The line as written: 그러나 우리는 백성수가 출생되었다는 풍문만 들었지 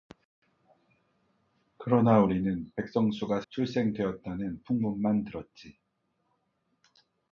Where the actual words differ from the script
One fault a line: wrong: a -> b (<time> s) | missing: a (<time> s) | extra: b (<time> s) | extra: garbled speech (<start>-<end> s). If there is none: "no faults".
no faults